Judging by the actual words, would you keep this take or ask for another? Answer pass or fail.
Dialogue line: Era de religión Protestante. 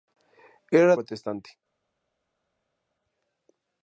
fail